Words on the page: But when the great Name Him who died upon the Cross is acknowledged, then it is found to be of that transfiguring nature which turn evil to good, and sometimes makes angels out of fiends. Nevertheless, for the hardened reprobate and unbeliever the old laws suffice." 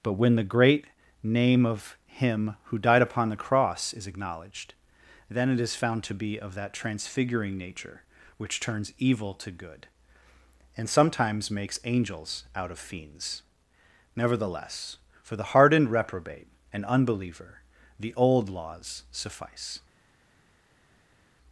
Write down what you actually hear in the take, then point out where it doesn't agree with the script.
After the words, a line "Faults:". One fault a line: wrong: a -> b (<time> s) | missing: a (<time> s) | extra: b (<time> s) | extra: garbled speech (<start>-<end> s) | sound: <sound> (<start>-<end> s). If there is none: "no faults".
But when the great Name of Him who died upon the Cross is acknowledged, then it is found to be of that transfiguring nature which turns evil to good, and sometimes makes angels out of fiends. Nevertheless, for the hardened reprobate and unbeliever the old laws suffice."
Faults:
extra: of (1.7 s)
wrong: turn -> turns (8.6 s)